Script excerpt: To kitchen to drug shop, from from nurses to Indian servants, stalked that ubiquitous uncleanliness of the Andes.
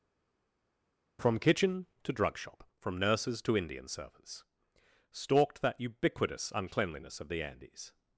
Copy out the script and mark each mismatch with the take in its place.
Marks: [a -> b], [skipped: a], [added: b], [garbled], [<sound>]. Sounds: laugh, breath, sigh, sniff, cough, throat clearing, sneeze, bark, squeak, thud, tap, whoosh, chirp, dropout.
[To -> From] kitchen to drug shop, from [skipped: from] nurses to Indian servants, stalked that ubiquitous uncleanliness of the Andes.